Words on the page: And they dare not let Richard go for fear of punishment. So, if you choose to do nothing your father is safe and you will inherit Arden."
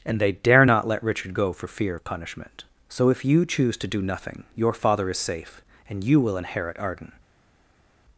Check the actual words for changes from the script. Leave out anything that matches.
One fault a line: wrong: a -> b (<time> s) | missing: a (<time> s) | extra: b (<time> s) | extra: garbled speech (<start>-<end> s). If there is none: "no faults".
no faults